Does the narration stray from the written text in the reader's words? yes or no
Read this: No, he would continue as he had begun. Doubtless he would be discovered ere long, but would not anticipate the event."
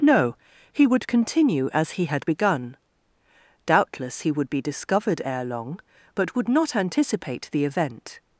no